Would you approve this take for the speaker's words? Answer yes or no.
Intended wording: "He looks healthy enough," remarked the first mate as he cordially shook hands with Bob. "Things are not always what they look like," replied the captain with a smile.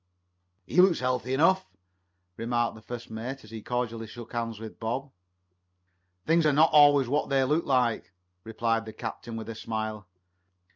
yes